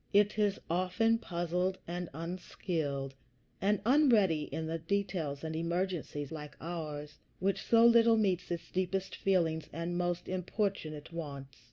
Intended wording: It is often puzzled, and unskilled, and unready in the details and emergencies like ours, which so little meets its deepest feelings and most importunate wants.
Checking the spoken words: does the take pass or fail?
pass